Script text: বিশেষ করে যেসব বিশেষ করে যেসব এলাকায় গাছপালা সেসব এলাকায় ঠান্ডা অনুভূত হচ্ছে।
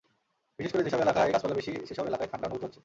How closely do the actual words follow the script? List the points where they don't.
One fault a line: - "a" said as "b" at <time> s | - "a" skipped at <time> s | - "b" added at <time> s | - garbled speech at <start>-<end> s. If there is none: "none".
- "বিশেষ করে যেসব" skipped at 1.0 s
- "বেশি" added at 1.5 s